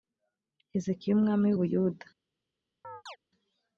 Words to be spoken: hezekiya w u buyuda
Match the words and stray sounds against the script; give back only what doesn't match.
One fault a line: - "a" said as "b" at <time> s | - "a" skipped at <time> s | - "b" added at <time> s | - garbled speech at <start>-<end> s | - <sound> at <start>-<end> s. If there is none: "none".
- "umwami" added at 1.1 s
- chirp at 2.8-3.2 s